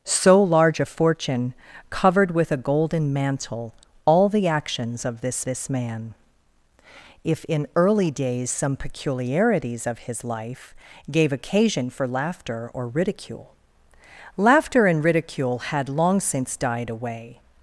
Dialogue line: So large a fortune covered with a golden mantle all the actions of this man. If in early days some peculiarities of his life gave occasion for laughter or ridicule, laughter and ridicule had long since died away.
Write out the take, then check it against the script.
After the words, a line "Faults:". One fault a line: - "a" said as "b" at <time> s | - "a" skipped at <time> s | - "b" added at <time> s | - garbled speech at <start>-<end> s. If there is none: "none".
So large a fortune covered with a golden mantle all the actions of this this man. If in early days some peculiarities of his life gave occasion for laughter or ridicule, laughter and ridicule had long since died away.
Faults:
- "this" added at 5.4 s